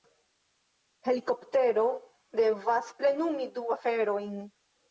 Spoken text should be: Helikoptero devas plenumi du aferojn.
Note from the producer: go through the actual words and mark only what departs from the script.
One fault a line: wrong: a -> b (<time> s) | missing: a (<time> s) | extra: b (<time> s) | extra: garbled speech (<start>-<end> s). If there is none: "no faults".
no faults